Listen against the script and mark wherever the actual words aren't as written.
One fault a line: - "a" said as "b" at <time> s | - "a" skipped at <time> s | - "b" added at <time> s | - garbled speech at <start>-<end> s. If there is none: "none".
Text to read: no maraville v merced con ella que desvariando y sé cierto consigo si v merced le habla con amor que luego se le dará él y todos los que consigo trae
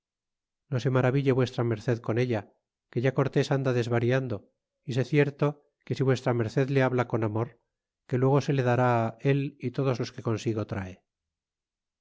- "se" added at 0.8 s
- "ya cortés anda" added at 3.0 s
- "consigo" said as "que" at 5.8 s